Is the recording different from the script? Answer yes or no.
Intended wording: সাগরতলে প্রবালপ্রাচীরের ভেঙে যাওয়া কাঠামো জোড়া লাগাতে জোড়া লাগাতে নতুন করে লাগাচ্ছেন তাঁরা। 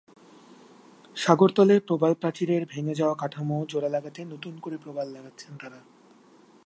yes